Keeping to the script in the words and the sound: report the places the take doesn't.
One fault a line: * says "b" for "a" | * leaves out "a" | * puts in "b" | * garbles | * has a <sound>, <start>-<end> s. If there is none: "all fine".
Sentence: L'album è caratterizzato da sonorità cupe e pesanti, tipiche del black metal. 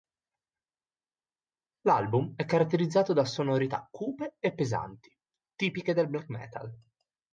all fine